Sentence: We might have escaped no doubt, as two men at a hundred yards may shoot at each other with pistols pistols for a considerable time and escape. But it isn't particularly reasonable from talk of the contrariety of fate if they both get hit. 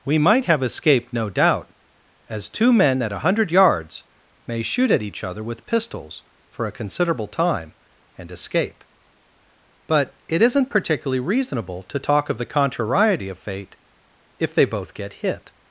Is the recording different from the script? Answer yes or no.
yes